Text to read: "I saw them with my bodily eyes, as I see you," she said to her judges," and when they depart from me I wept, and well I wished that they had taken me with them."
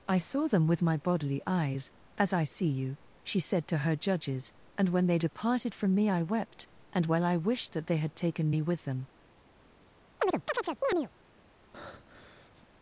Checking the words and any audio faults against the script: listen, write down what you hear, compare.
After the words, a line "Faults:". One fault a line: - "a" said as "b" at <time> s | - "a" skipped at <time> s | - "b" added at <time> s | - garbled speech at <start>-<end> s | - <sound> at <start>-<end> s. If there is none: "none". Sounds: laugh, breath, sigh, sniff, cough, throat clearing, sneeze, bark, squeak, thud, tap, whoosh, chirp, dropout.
"I saw them with my bodily eyes, as I see you," she said to her judges," and when they departed from me I wept, and well I wished that they had taken me with them."
Faults:
- "depart" said as "departed" at 5.2 s
- chirp at 10.2-11.1 s
- breath at 11.7-12.7 s